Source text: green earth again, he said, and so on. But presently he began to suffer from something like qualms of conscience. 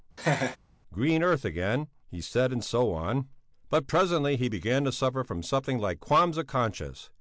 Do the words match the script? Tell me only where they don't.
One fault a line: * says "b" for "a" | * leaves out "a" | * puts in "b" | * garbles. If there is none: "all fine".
all fine